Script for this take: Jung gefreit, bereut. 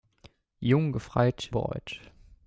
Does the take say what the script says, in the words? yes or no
yes